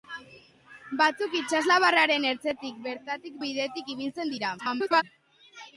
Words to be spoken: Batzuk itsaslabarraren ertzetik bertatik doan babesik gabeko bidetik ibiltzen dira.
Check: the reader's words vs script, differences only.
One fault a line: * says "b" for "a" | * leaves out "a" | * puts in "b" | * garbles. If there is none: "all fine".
* leaves out "doan babesik gabeko"
* garbles